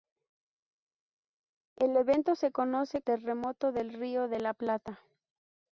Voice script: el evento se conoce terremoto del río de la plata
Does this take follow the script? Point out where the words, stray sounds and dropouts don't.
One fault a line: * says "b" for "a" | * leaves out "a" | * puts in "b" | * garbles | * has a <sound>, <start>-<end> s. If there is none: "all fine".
all fine